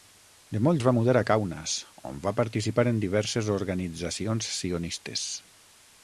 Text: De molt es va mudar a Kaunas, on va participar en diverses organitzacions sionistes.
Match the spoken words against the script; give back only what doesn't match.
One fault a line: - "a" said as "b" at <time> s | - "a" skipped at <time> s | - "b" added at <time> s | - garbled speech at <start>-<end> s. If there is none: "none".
none